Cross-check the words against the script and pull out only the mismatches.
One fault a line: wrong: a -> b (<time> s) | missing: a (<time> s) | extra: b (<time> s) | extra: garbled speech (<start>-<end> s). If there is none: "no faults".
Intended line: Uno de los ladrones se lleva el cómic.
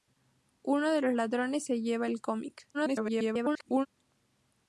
extra: garbled speech (2.7-3.9 s)